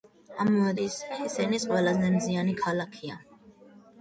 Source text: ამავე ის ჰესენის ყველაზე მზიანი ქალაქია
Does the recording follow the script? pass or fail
pass